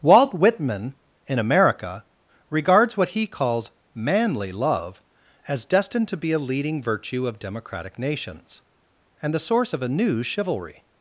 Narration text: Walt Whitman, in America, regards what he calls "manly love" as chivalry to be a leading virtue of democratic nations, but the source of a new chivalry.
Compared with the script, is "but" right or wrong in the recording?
wrong